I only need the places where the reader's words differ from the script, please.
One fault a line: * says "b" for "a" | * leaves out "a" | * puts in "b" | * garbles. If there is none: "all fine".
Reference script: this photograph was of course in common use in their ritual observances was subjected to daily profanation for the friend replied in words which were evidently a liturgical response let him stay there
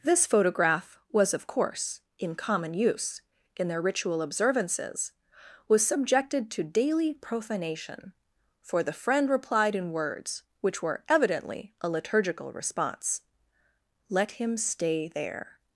all fine